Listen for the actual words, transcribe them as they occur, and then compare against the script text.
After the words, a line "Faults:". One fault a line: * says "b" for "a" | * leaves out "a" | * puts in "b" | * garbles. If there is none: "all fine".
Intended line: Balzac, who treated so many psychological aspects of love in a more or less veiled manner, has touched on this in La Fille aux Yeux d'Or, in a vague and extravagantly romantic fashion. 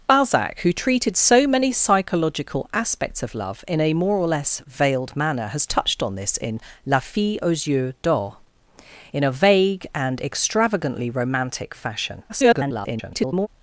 Balzac, who treated so many psychological aspects of love in a more or less veiled manner, has touched on this in La Fille aux Yeux d'Or, in a vague and extravagantly romantic fashion. [garbled]
Faults:
* garbles